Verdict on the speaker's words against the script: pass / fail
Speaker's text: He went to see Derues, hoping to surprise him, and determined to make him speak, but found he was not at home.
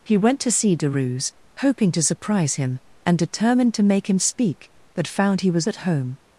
fail